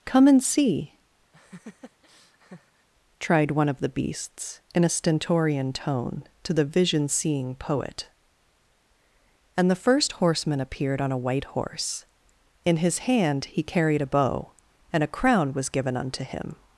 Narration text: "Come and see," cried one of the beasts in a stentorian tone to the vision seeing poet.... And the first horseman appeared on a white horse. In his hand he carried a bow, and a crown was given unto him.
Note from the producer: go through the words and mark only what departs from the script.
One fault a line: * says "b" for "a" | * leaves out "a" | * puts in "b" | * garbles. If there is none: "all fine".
* says "tried" for "cried"